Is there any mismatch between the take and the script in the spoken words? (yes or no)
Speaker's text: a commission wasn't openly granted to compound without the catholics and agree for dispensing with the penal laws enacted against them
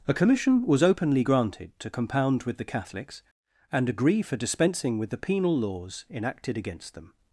yes